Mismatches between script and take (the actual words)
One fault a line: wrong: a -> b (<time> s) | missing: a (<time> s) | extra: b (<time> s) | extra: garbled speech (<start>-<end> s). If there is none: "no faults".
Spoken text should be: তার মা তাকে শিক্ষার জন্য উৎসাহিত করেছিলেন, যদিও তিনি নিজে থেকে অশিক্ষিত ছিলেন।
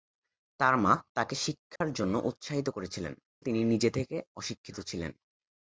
missing: যদিও (3.1 s)